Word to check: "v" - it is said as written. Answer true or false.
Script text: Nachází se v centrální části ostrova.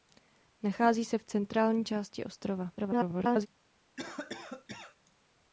true